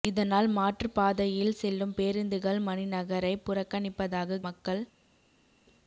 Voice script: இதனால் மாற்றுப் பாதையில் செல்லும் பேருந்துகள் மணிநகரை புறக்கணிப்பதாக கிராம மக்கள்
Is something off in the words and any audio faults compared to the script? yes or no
yes